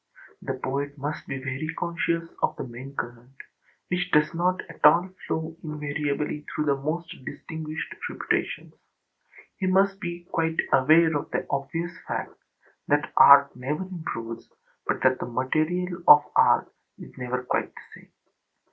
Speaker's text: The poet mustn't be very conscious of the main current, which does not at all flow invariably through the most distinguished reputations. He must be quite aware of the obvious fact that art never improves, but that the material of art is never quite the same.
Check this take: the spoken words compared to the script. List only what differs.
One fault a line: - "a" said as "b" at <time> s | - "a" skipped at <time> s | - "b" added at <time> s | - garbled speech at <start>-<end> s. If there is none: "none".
- "mustn't" said as "must" at 1.0 s